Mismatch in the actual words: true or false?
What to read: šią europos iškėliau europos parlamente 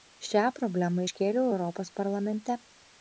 true